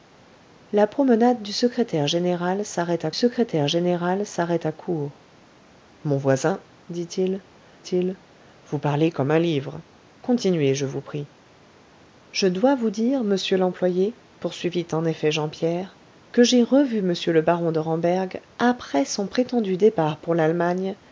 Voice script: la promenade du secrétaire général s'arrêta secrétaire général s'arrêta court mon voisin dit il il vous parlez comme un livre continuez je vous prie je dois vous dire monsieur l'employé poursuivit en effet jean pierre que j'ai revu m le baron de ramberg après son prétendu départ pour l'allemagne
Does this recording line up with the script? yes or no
yes